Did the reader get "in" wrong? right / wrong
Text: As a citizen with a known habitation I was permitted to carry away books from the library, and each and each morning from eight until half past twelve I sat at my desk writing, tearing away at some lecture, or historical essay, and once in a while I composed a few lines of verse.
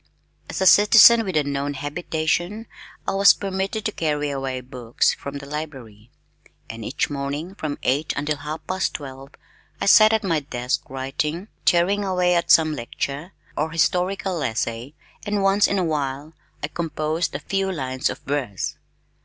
right